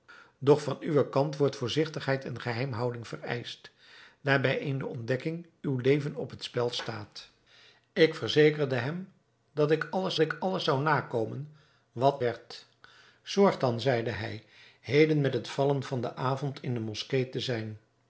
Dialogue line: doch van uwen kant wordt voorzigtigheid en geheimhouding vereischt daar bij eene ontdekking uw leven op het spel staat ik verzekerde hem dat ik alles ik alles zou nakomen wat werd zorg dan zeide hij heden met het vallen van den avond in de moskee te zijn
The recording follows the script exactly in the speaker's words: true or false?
true